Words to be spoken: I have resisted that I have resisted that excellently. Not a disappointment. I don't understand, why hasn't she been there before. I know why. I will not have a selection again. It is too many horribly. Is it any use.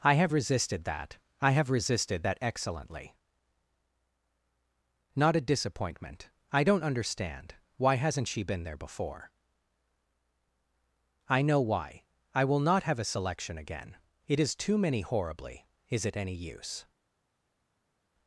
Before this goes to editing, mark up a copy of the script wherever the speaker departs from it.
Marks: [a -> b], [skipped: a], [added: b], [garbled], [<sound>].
I have resisted that I have resisted that excellently. Not a disappointment. I don't understand, why hasn't she been there before. I know why. I will not have a selection again. It is too many horribly. Is it any use.